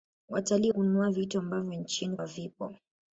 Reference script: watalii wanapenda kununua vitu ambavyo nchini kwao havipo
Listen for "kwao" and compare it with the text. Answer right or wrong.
wrong